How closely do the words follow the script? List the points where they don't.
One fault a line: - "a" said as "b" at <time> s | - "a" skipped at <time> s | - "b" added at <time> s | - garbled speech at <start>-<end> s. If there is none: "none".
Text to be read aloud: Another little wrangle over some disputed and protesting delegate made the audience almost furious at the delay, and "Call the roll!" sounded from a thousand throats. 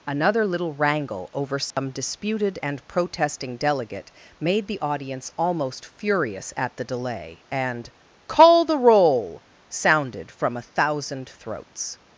none